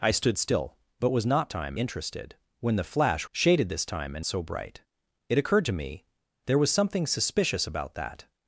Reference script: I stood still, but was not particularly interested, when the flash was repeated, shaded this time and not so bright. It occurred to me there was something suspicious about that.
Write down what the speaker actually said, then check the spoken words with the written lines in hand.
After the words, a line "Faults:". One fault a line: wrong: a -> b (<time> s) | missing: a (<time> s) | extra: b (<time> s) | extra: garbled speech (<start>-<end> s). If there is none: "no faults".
I stood still, but was not time interested, when the flash shaded this time and so bright. It occurred to me there was something suspicious about that.
Faults:
wrong: particularly -> time (1.5 s)
missing: was repeated (3.3 s)
missing: not (4.3 s)